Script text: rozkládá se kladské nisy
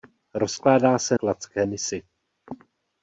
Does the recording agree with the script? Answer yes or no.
yes